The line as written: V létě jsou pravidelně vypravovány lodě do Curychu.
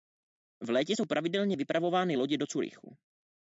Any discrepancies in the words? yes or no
no